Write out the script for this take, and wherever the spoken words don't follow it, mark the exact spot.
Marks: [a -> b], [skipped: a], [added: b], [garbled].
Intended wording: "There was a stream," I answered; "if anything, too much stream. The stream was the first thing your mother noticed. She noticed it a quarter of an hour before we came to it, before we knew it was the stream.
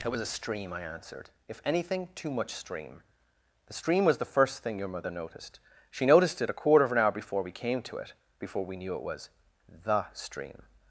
["There -> It] was a stream," I answered; "if anything, too much stream. The stream was the first thing your mother noticed. She noticed it a quarter of an hour before we came to it, before we knew it was the stream.